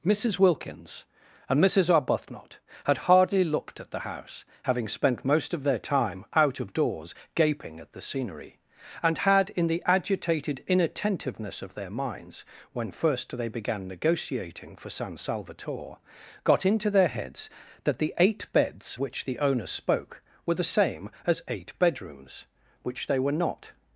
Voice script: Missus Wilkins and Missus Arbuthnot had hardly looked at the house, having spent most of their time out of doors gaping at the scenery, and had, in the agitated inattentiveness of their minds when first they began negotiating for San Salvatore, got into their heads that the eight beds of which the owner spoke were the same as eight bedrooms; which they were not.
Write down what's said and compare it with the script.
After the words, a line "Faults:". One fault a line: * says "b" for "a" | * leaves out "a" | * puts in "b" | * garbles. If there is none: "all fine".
Missus Wilkins and Missus Arbuthnot had hardly looked at the house, having spent most of their time out of doors gaping at the scenery, and had, in the agitated inattentiveness of their minds when first they began negotiating for San Salvatore, got into their heads that the eight beds which the owner spoke were the same as eight bedrooms; which they were not.
Faults:
* leaves out "of"